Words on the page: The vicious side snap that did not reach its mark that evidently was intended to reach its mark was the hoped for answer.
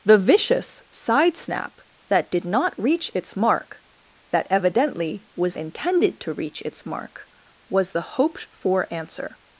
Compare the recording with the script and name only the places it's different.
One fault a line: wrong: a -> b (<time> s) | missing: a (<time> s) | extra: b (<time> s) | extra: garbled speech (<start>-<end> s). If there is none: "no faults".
no faults